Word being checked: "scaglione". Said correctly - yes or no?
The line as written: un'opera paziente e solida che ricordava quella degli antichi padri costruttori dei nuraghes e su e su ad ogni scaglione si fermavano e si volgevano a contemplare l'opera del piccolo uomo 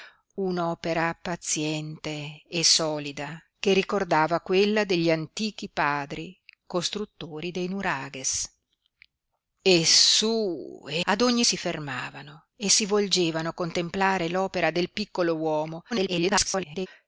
no